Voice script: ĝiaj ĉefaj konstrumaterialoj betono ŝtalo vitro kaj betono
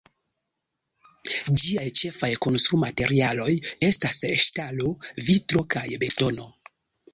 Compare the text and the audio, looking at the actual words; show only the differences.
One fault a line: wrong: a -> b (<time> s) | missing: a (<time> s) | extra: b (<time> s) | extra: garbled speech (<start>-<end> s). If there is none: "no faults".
wrong: betono -> estas (3.9 s)